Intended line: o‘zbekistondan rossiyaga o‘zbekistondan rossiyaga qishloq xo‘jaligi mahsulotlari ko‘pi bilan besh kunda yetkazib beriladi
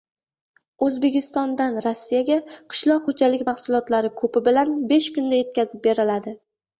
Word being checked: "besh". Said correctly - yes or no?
yes